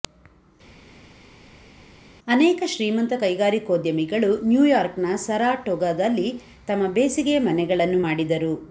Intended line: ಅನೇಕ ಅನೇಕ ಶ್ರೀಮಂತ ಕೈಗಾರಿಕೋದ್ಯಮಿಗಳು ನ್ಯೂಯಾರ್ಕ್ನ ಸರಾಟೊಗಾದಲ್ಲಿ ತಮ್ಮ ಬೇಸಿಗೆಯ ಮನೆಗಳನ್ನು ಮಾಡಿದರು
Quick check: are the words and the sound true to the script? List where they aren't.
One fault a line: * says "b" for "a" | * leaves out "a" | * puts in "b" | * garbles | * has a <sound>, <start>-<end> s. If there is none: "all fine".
* leaves out "ಅನೇಕ"